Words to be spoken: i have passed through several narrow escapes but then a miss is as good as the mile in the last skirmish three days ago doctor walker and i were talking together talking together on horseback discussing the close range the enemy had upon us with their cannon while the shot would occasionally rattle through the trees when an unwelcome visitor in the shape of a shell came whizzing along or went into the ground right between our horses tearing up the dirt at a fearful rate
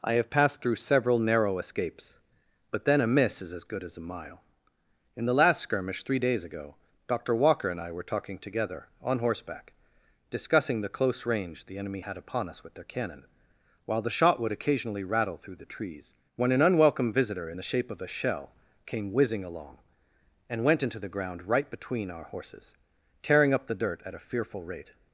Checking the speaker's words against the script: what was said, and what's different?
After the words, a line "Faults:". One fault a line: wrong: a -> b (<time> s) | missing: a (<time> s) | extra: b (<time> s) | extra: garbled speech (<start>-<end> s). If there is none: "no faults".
i have passed through several narrow escapes but then a miss is as good as a mile in the last skirmish three days ago doctor walker and i were talking together on horseback discussing the close range the enemy had upon us with their cannon while the shot would occasionally rattle through the trees when an unwelcome visitor in the shape of a shell came whizzing along and went into the ground right between our horses tearing up the dirt at a fearful rate
Faults:
wrong: the -> a (4.0 s)
missing: talking together (8.9 s)
wrong: or -> and (20.5 s)